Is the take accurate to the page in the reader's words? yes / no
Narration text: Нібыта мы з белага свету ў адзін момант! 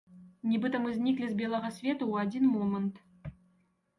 no